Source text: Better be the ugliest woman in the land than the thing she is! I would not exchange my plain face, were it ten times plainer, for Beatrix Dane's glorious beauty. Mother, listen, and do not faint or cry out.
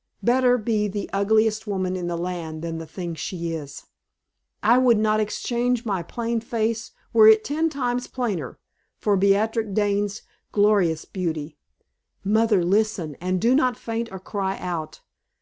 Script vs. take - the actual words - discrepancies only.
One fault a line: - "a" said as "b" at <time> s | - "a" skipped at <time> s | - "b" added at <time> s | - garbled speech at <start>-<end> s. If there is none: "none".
none